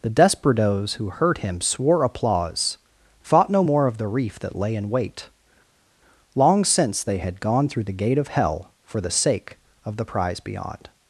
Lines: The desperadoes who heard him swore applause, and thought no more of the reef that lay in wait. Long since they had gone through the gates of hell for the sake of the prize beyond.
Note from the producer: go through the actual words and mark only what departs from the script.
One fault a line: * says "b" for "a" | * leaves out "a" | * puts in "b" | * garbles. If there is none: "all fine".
* leaves out "and"
* says "gate" for "gates"